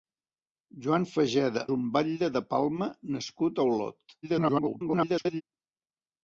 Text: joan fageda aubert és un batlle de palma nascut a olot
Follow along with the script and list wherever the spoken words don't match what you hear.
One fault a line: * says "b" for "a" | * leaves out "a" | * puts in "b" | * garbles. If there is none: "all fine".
* leaves out "aubert és"
* garbles